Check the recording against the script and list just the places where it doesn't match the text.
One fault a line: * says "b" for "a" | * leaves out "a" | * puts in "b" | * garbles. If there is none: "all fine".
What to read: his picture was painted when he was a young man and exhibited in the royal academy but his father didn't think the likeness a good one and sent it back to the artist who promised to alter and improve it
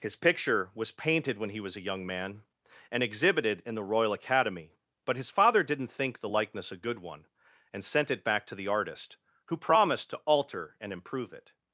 all fine